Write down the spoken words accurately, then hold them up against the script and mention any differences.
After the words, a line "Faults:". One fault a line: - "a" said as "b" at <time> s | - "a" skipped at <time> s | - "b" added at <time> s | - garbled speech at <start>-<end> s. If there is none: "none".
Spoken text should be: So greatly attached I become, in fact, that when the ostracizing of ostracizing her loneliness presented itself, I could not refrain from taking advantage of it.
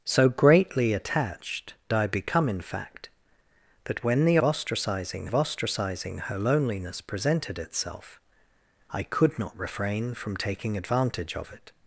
So greatly attached I become, in fact, that when the ostracizing of ostracizing her loneliness presented itself, I could not refrain from taking advantage of it.
Faults:
none